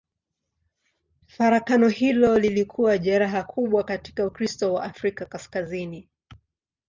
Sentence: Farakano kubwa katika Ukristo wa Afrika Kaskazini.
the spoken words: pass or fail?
fail